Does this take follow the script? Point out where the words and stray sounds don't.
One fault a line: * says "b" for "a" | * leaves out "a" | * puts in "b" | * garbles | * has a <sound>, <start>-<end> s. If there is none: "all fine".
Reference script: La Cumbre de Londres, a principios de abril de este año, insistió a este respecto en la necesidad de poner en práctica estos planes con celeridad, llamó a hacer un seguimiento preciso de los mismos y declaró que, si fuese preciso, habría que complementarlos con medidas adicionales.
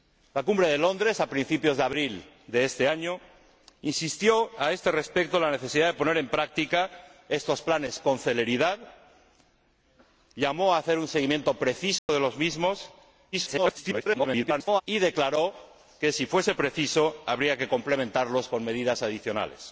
* has a dropout, 12.0-12.1 s
* garbles